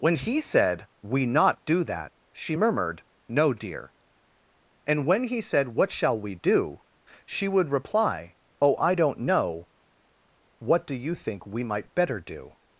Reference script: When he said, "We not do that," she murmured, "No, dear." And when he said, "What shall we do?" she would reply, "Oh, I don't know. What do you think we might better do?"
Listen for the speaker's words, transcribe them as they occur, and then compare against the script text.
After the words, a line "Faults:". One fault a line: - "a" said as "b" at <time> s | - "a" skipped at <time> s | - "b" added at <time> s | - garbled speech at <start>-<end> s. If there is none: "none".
When he said, "We not do that," she murmured, "No, dear." And when he said, "What shall we do?" she would reply, "Oh, I don't know. What do you think we might better do?"
Faults:
none